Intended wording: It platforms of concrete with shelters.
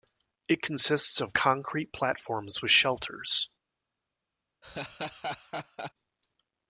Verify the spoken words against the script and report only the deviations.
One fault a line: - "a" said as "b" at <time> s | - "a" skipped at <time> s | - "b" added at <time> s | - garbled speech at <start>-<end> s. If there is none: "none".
- "platforms" said as "consists" at 0.6 s
- "platforms" added at 1.9 s